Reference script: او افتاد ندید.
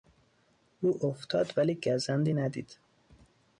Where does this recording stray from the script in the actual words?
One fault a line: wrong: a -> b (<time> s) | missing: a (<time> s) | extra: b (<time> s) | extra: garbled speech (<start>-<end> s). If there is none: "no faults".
extra: ولی گزندی (1.6 s)